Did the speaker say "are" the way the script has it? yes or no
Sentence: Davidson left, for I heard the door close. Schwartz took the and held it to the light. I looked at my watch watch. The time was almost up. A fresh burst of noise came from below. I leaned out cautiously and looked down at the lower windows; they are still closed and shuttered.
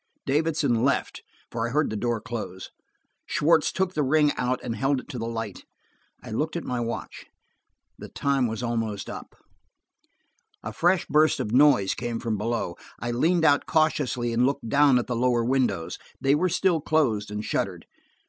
no